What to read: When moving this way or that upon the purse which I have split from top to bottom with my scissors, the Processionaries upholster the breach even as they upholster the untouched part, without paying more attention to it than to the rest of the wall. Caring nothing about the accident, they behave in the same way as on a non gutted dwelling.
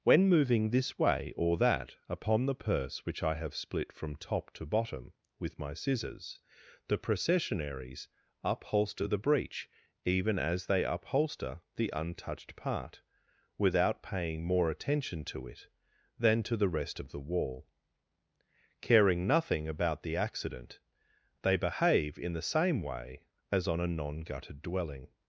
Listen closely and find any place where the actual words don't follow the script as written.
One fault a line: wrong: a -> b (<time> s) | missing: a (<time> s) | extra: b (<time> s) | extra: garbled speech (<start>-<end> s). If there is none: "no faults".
no faults